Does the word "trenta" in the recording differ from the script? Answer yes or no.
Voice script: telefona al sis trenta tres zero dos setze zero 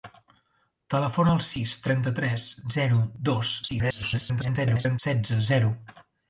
no